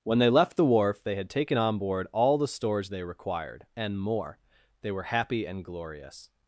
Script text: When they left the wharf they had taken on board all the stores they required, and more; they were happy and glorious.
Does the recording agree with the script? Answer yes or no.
yes